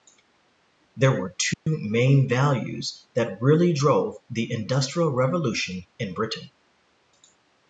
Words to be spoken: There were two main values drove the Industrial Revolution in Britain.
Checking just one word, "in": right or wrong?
right